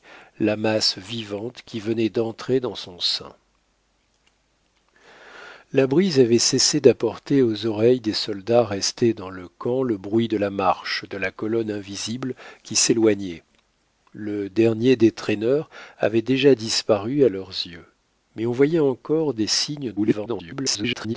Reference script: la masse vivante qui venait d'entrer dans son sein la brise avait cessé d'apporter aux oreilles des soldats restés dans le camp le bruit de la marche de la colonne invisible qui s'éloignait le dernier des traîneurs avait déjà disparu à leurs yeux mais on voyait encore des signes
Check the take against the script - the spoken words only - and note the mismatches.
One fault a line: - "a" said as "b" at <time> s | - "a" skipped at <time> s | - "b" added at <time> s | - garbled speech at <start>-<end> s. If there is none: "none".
- garbled speech at 20.0-21.2 s